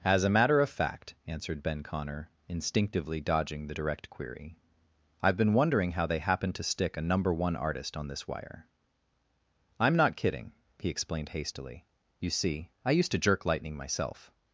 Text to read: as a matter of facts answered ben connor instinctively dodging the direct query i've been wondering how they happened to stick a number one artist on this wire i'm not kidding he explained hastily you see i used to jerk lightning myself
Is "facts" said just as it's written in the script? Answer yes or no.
no